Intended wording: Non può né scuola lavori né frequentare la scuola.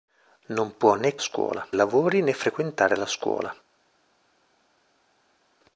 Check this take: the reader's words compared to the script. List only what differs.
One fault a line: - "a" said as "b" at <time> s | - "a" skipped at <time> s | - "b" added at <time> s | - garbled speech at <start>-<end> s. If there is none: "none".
none